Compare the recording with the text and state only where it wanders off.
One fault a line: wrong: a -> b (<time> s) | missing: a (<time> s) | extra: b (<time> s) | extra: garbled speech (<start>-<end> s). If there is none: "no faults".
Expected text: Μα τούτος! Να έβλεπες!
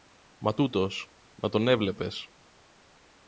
extra: τον (1.5 s)